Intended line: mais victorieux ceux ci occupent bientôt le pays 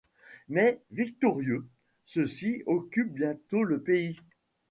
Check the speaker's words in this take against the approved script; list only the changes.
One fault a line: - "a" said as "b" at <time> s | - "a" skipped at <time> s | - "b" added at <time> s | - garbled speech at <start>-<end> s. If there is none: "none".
none